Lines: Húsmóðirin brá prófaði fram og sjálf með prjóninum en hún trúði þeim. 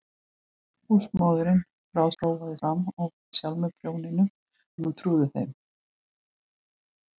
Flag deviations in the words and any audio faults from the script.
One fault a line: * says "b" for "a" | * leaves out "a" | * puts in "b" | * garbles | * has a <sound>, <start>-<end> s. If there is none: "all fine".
all fine